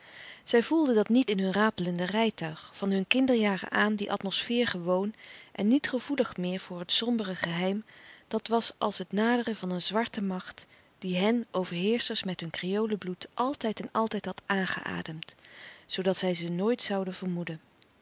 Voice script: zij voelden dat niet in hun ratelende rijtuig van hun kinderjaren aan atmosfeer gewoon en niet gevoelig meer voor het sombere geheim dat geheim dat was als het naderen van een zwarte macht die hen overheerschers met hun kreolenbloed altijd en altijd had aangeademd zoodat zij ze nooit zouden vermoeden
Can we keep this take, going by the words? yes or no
no